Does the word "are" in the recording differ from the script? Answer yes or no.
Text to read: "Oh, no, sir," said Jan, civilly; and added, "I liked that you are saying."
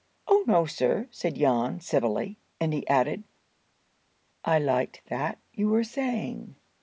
yes